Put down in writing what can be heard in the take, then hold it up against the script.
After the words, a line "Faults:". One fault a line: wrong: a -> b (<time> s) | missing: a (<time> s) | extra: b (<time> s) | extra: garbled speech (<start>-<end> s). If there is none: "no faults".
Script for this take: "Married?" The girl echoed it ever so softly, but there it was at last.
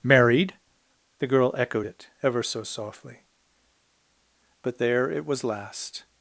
"Married?" The girl echoed it ever so softly, but there it was last.
Faults:
missing: at (5.4 s)